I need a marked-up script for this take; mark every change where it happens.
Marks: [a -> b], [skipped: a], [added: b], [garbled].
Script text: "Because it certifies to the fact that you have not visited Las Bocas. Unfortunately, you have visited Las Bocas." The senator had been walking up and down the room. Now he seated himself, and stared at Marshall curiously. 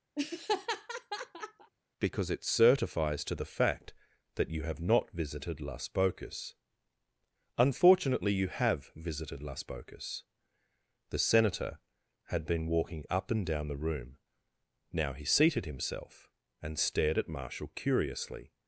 "Because it certifies to the fact that you have not visited Las Bocas. Unfortunately, you have visited Las Bocas." The senator had been walking up and down the room. Now he seated himself, and stared at Marshall curiously.